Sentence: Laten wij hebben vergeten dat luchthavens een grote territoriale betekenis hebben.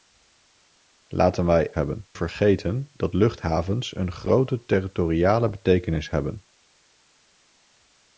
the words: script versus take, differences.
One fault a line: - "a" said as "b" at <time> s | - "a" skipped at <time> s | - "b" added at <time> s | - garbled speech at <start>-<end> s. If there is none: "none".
none